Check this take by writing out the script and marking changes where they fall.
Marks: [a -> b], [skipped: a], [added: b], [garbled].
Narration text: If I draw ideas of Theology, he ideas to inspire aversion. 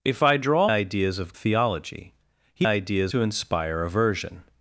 If I draw ideas of Theology, he ideas to inspire aversion.